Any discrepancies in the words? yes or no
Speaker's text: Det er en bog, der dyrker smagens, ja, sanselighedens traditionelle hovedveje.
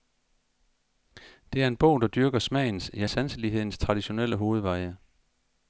no